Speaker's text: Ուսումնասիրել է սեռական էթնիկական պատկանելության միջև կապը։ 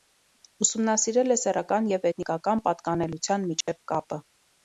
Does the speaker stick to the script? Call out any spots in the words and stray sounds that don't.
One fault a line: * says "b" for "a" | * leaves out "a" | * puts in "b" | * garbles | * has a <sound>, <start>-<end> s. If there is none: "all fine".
* puts in "և"
* has a dropout, 3.6-3.7 s